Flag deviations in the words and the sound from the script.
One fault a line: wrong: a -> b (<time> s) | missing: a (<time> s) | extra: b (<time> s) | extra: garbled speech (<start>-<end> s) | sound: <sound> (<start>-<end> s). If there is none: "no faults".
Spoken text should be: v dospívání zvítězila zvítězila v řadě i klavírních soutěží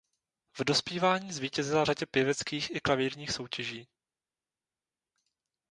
missing: zvítězila (1.9 s)
extra: pěveckých (2.1 s)